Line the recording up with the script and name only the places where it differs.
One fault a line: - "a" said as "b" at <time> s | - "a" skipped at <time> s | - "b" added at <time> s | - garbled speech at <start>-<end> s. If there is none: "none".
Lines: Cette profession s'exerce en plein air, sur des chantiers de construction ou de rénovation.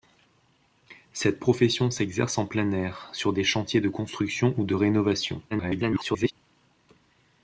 - garbled speech at 5.5-6.3 s